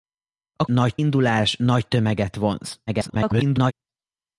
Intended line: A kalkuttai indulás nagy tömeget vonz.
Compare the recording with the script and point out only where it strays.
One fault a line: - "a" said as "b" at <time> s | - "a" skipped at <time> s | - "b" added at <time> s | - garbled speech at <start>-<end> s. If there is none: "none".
- "kalkuttai" said as "nagy" at 0.6 s
- garbled speech at 2.9-3.7 s